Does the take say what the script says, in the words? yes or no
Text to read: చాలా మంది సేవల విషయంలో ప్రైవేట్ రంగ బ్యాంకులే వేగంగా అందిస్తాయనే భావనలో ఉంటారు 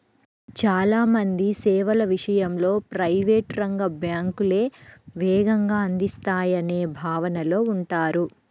yes